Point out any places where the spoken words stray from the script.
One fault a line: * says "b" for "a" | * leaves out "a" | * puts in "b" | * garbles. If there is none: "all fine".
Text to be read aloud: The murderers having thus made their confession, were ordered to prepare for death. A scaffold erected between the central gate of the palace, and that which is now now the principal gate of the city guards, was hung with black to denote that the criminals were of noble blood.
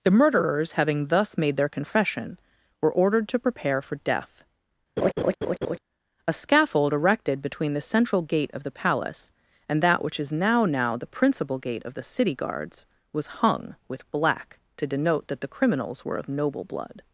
all fine